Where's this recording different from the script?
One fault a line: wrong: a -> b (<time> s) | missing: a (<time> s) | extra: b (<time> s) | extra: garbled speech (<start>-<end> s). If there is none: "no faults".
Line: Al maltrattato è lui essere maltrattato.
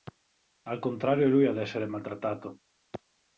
wrong: maltrattato -> contrario (0.8 s)
extra: ad (1.4 s)